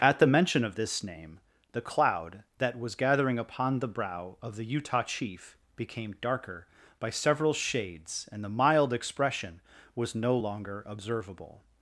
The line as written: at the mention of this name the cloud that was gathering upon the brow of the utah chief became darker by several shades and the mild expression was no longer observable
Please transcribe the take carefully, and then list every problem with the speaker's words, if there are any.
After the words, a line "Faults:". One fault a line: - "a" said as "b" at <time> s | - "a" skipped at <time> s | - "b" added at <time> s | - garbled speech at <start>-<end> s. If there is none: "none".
at the mention of this name the cloud that was gathering upon the brow of the utah chief became darker by several shades and the mild expression was no longer observable
Faults:
none